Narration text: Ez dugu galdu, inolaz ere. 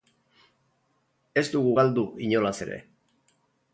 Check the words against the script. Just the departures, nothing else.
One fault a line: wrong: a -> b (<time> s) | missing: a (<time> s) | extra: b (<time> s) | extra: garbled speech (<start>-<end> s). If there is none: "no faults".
no faults